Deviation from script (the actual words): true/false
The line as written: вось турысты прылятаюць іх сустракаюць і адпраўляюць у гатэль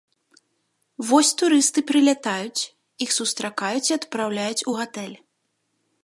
false